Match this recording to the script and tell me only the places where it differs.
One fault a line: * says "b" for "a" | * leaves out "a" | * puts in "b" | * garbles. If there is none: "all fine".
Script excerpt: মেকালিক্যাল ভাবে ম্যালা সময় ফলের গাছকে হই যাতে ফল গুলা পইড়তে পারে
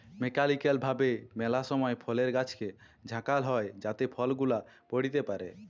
* puts in "ঝাঁকাল"